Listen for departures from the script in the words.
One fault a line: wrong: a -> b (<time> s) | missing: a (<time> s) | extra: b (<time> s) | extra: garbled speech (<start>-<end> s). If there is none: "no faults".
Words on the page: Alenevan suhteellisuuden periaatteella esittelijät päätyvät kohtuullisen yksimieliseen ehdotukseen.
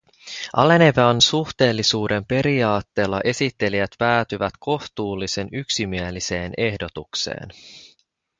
no faults